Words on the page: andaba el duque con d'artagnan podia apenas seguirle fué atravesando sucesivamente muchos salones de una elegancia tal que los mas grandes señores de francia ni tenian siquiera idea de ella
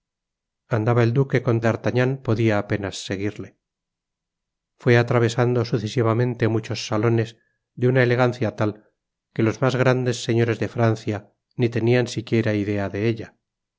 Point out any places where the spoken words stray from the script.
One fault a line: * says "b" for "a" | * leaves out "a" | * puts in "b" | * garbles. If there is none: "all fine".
all fine